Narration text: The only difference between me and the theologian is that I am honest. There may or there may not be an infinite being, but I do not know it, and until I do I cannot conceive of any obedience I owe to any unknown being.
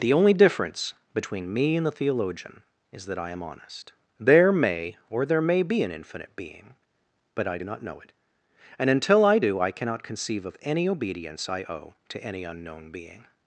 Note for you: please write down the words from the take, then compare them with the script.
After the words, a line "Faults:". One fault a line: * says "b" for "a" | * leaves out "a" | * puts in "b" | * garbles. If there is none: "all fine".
The only difference between me and the theologian is that I am honest. There may or there may be an infinite being, but I do not know it, and until I do I cannot conceive of any obedience I owe to any unknown being.
Faults:
* leaves out "not"